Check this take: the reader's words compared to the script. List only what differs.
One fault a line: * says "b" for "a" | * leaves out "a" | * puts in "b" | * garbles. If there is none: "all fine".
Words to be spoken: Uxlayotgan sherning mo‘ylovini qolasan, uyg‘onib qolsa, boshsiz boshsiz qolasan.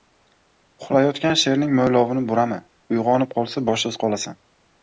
* says "burama" for "qolasan"
* leaves out "boshsiz"